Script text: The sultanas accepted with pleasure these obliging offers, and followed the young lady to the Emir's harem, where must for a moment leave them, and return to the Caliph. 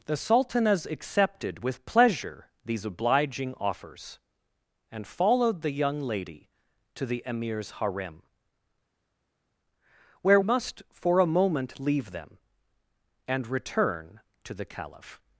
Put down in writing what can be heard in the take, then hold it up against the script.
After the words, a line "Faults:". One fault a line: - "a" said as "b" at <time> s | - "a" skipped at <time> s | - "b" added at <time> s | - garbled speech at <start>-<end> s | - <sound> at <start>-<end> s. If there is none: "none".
The sultanas accepted with pleasure these obliging offers, and followed the young lady to the Emir's harem, where must for a moment leave them, and return to the Caliph.
Faults:
none